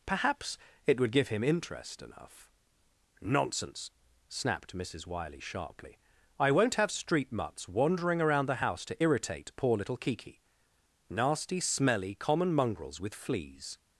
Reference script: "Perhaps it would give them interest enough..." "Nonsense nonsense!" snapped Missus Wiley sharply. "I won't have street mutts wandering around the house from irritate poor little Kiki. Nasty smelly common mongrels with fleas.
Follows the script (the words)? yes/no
no